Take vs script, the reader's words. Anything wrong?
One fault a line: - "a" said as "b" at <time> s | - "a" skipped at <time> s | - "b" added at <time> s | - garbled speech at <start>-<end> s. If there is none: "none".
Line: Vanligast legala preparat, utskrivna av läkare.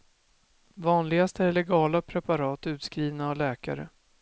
- "är" added at 1.4 s